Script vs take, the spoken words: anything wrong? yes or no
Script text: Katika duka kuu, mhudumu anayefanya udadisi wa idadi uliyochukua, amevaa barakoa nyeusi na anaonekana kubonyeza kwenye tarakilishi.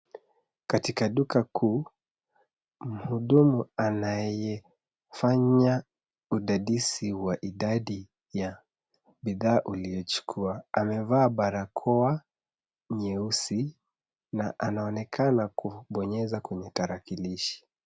yes